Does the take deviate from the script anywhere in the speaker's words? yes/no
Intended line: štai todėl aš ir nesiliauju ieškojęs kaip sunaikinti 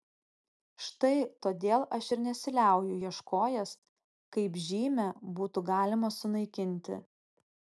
yes